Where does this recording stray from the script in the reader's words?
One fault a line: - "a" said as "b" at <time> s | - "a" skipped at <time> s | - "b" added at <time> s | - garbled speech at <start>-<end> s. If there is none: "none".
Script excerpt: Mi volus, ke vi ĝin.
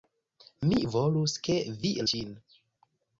none